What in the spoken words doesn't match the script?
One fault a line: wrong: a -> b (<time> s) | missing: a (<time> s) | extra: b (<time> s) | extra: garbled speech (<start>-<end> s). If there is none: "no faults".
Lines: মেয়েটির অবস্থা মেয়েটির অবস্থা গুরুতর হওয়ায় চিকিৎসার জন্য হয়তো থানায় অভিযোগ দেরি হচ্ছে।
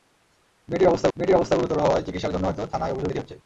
no faults